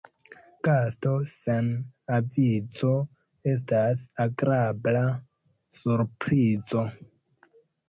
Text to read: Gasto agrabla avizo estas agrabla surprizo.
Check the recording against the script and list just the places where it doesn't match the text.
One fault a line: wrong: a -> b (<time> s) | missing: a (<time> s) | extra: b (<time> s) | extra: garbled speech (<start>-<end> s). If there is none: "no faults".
wrong: agrabla -> sen (1.3 s)